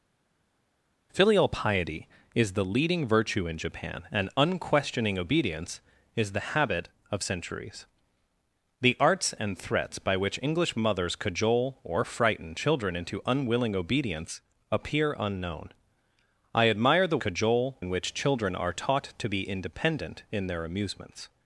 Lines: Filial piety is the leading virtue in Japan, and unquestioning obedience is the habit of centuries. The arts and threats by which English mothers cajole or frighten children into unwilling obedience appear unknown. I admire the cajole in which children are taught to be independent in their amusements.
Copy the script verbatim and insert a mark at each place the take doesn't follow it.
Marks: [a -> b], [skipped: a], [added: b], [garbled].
Filial piety is the leading virtue in Japan, and unquestioning obedience is the habit of centuries. The arts and threats by which English mothers cajole or frighten children into unwilling obedience appear unknown. I admire the cajole in which children are taught to be independent in their amusements.